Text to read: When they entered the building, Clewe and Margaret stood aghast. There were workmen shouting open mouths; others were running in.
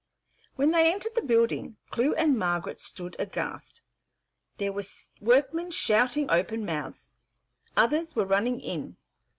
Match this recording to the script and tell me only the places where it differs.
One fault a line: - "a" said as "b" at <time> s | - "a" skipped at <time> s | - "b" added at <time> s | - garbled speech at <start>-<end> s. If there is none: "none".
none